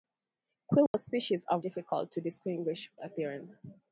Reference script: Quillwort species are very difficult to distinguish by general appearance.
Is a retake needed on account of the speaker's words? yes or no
yes